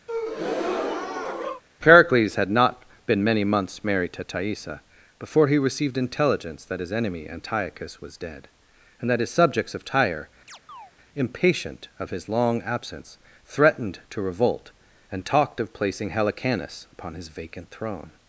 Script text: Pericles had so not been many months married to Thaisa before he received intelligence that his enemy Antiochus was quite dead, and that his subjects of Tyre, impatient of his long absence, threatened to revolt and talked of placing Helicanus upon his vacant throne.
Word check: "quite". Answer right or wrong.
wrong